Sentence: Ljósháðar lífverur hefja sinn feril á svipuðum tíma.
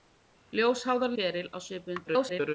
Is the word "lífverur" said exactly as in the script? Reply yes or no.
no